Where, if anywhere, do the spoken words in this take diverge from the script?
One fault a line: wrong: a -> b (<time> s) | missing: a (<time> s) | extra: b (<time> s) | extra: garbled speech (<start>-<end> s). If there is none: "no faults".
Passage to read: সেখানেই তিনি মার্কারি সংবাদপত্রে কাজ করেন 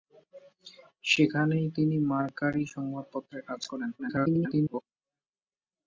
extra: garbled speech (4.0-4.8 s)